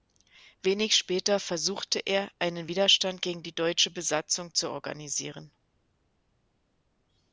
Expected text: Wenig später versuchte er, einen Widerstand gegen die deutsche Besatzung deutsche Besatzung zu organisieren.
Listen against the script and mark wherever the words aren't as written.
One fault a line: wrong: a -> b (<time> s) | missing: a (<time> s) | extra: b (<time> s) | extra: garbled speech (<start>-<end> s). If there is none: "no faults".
missing: deutsche Besatzung (4.5 s)